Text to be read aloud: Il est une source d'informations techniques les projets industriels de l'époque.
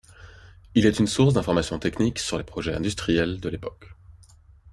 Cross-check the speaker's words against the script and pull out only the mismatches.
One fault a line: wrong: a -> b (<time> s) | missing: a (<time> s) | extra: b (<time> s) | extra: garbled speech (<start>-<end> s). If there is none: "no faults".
extra: sur (2.2 s)